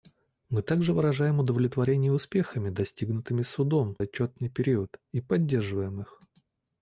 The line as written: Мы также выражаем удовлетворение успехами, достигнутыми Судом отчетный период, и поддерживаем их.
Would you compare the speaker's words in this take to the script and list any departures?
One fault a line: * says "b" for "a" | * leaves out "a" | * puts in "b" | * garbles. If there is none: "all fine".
all fine